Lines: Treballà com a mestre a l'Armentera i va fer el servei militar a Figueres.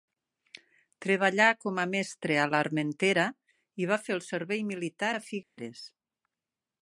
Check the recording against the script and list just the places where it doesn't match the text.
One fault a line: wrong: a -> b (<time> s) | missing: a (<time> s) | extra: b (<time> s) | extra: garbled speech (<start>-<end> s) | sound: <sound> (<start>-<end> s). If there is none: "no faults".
sound: dropout (5.4-5.6 s)